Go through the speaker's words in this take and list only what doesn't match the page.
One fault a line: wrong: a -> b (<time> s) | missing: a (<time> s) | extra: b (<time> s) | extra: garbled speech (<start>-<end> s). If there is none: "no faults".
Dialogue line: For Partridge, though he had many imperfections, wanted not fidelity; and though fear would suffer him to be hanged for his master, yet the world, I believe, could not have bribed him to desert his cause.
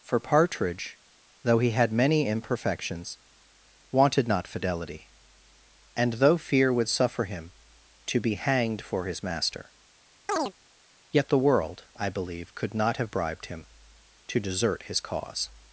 no faults